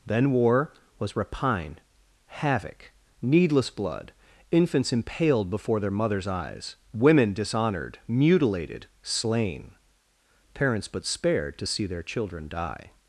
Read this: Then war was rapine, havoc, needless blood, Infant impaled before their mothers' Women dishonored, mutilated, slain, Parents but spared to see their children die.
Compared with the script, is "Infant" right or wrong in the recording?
wrong